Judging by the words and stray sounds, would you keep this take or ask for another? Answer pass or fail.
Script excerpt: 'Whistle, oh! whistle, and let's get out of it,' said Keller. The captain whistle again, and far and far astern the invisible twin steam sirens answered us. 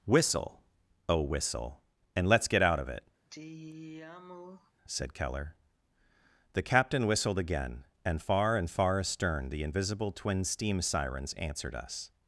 fail